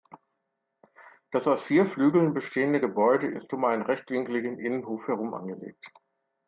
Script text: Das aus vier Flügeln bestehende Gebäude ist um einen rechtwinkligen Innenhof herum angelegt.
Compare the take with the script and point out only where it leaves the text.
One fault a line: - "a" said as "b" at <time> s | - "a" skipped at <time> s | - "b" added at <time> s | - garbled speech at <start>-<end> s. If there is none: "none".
none